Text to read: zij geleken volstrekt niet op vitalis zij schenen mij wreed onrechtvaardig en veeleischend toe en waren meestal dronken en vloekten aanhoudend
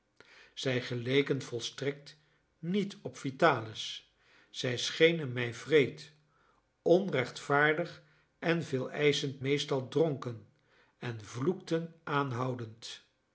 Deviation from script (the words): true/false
true